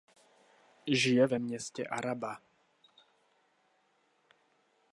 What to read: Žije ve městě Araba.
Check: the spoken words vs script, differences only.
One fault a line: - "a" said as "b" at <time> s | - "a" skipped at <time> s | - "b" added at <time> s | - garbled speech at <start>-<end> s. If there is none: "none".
none